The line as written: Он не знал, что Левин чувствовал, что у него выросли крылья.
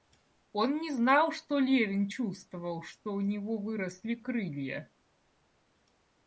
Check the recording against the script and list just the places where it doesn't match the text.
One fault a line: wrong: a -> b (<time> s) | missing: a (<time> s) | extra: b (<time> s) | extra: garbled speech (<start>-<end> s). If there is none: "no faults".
no faults